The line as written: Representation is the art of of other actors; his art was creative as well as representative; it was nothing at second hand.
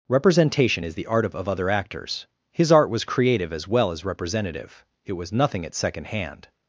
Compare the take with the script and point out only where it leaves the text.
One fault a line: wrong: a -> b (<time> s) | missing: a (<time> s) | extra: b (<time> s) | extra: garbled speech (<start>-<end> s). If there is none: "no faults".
no faults